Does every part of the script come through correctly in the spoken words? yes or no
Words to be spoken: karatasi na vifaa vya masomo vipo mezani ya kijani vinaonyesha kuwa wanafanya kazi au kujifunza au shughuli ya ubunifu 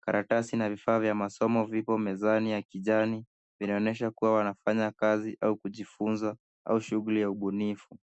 yes